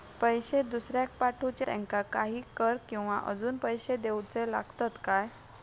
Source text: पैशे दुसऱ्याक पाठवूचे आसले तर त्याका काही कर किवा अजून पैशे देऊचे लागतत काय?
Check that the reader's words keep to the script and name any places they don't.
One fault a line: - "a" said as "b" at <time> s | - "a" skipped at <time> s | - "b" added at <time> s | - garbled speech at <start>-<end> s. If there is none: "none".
- "आसले तर" skipped at 1.6 s